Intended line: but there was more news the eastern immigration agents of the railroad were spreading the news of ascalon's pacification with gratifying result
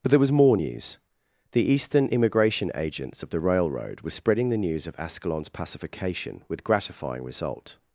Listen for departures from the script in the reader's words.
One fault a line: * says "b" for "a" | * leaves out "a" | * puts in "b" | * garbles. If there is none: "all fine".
all fine